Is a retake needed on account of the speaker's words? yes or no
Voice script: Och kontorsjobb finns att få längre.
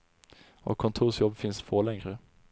no